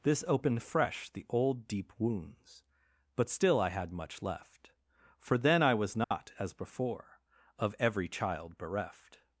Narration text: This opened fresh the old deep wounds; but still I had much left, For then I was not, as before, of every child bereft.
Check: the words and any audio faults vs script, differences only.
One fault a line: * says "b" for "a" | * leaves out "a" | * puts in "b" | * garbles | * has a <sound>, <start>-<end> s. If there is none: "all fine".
* has a dropout, 6.0-6.1 s